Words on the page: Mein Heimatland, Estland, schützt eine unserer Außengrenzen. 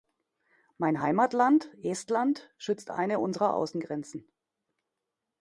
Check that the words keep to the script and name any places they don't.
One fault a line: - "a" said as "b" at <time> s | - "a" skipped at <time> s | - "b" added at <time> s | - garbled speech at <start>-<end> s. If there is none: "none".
none